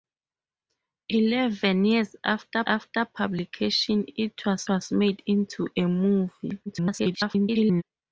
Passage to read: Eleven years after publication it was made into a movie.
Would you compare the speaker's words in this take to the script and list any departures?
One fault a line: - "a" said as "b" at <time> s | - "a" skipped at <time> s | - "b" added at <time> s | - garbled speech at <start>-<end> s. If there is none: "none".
- "after" added at 2.6 s
- "was" added at 4.7 s
- garbled speech at 6.7-7.8 s